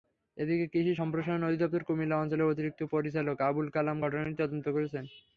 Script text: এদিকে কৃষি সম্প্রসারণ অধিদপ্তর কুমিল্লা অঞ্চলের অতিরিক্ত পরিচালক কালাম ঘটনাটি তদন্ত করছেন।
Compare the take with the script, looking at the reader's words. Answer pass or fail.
fail